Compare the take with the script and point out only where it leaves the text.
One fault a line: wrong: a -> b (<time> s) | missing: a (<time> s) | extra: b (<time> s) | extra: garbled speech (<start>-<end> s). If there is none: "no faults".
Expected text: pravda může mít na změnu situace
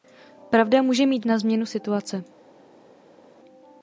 no faults